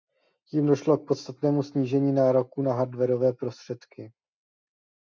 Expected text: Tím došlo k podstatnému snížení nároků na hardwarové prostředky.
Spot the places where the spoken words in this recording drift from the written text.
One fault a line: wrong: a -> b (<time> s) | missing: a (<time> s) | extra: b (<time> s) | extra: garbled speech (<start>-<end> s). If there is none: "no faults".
no faults